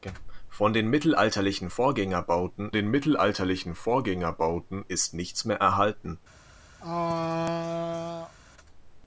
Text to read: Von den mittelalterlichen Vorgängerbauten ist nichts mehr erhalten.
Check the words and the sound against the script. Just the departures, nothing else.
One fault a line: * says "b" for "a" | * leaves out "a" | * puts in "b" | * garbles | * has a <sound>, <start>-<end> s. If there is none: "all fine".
* puts in "den mittelalterlichen Vorgängerbauten"
* has a throat clearing, 6.8-8.3 s